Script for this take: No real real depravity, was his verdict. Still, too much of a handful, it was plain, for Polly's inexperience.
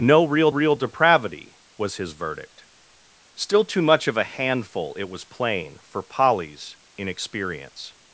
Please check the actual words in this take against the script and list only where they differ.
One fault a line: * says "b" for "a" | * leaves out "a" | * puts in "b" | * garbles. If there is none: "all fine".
all fine